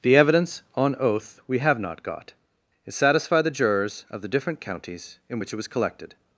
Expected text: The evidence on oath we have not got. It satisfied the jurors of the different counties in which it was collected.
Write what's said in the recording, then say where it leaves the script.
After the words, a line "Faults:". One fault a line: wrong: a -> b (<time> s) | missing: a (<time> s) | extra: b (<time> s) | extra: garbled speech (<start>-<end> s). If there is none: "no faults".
The evidence on oath we have not got. It satisfied the jurors of the different counties in which it was collected.
Faults:
no faults